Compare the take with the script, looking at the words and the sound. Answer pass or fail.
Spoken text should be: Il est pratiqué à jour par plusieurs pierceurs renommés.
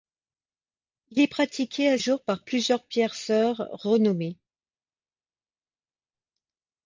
pass